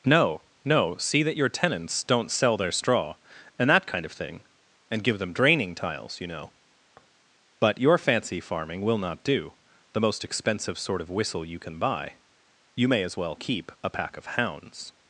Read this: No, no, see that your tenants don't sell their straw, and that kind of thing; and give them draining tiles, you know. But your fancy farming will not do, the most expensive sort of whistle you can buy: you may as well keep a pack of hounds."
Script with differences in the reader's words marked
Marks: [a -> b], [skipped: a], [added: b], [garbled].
No, no, see that your tenants don't sell their straw, and that kind of thing; and give them draining tiles, you know. But your fancy farming will not do, the most expensive sort of whistle you can buy: you may as well keep a pack of hounds."